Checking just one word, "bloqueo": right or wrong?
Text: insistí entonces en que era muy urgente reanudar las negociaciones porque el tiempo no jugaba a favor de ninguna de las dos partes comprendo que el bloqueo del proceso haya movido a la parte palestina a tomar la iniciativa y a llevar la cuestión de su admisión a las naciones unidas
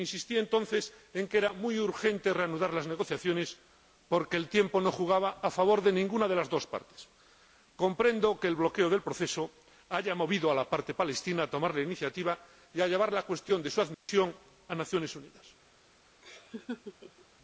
right